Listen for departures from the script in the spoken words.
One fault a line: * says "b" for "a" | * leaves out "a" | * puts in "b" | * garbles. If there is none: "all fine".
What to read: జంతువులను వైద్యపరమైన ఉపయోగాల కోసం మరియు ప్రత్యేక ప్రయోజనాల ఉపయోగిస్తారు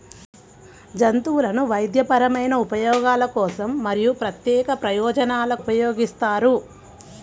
all fine